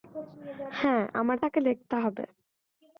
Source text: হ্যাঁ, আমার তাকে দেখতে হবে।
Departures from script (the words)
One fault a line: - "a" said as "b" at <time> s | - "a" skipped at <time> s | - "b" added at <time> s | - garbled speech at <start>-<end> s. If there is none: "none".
none